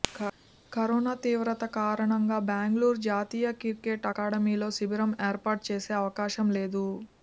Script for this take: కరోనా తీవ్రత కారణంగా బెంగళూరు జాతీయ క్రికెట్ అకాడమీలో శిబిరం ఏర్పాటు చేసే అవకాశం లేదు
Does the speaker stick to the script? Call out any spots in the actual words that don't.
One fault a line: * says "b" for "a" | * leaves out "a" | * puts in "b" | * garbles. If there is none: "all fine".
all fine